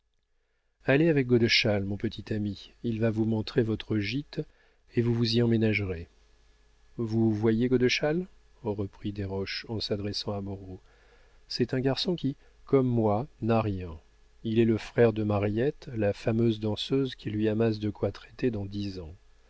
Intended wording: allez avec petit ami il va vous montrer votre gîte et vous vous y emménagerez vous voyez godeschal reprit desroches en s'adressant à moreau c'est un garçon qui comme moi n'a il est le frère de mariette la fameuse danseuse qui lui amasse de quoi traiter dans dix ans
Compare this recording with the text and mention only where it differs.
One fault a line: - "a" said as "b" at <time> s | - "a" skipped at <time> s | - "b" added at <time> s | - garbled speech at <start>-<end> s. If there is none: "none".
- "godeschal mon" added at 1.3 s
- "rien" added at 13.6 s